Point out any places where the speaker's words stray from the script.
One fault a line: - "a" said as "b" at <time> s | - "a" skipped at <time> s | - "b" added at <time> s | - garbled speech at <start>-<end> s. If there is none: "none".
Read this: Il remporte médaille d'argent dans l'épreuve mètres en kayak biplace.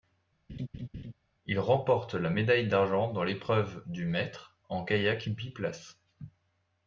- "la" added at 2.2 s
- "du" added at 3.8 s